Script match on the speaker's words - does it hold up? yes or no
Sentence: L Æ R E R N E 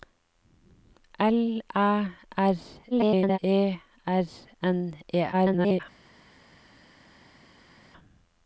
no